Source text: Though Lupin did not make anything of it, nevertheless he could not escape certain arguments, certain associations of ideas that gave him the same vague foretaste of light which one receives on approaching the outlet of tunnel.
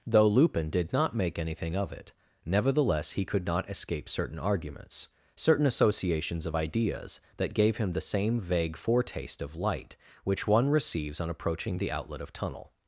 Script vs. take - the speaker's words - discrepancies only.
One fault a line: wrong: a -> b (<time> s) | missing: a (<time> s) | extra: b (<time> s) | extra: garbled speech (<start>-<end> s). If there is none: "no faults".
no faults